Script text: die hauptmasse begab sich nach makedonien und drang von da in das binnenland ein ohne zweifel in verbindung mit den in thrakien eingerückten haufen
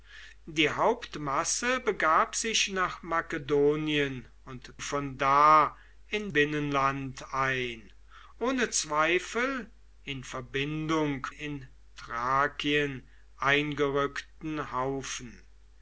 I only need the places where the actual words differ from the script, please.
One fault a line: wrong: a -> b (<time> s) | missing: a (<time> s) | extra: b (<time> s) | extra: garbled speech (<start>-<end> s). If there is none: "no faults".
missing: drang (4.7 s)
missing: das (6.3 s)
missing: mit den (11.3 s)